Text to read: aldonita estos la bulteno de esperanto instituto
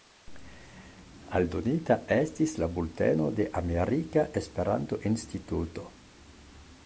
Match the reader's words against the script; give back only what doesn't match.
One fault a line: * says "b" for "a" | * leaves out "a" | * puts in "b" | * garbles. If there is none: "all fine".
* says "estis" for "estos"
* puts in "amerika"